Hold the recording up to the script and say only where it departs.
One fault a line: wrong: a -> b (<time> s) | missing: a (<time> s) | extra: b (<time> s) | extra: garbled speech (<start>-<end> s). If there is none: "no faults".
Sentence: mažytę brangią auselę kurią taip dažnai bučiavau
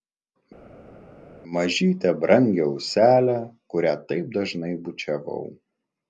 no faults